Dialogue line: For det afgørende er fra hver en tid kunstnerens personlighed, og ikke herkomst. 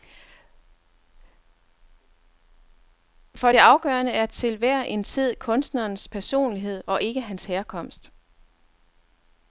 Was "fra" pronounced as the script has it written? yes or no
no